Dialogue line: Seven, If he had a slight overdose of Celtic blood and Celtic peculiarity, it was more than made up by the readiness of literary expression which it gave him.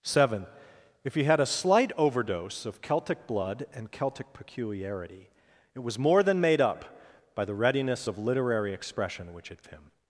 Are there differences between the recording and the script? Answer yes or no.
yes